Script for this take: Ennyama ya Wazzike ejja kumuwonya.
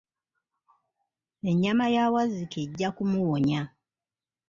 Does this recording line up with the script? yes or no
yes